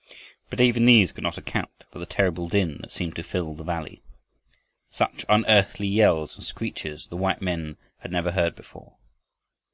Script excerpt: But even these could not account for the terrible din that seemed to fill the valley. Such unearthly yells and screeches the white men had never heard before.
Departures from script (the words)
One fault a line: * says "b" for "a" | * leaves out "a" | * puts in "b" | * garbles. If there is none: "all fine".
all fine